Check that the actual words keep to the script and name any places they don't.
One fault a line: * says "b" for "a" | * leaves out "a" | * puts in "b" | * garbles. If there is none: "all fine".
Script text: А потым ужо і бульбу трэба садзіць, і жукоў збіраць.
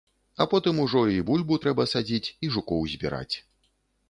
all fine